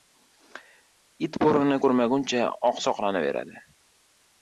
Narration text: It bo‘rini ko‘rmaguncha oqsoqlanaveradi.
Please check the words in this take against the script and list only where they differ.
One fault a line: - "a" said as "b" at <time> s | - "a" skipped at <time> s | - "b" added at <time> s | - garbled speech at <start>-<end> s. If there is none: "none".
none